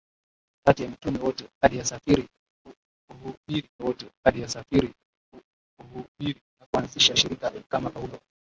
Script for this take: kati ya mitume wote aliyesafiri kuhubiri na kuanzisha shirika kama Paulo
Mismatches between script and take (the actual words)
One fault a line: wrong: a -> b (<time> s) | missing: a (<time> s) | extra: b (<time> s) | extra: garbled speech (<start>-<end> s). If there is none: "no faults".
extra: wote aliyesafiri kuhubiri (3.8 s)